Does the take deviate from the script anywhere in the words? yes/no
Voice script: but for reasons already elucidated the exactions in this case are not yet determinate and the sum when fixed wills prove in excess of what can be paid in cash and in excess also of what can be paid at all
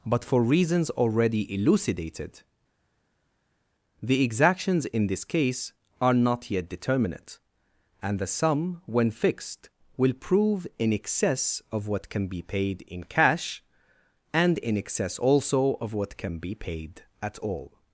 yes